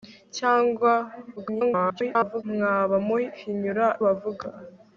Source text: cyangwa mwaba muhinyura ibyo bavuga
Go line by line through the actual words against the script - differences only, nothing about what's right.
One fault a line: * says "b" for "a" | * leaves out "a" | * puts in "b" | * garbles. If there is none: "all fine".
* garbles
* leaves out "ibyo"